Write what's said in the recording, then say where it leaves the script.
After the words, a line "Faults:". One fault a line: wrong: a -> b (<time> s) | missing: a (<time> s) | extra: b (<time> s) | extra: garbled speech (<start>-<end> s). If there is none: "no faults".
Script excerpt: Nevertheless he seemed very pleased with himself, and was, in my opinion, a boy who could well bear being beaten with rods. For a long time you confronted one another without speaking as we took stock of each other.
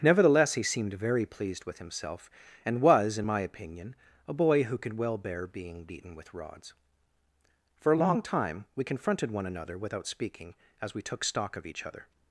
Nevertheless he seemed very pleased with himself, and was, in my opinion, a boy who could well bear being beaten with rods. For a long time we confronted one another without speaking as we took stock of each other.
Faults:
wrong: you -> we (8.7 s)